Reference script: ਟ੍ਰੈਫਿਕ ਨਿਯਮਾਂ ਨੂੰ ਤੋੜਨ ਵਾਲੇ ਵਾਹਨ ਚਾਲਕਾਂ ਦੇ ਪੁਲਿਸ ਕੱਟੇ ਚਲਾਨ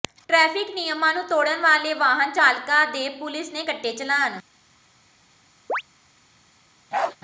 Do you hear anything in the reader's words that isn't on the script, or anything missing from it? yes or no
yes